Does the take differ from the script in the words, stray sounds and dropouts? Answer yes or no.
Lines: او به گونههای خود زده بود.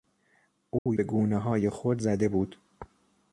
yes